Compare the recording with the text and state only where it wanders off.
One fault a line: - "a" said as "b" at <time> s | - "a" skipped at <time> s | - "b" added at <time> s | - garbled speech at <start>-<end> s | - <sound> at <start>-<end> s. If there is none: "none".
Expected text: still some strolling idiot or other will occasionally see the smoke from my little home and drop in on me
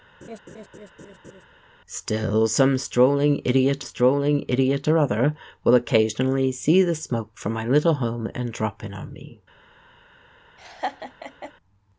- laugh at 0.2-1.4 s
- "strolling idiot" added at 3.8 s
- laugh at 10.6-11.5 s